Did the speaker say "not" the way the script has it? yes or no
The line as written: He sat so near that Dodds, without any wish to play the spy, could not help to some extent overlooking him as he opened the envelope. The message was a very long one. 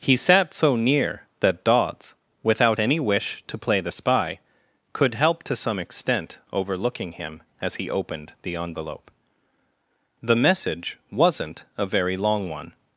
no